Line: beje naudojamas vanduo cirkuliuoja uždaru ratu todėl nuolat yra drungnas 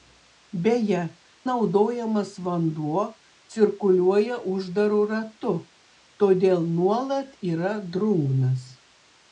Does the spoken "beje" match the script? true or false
true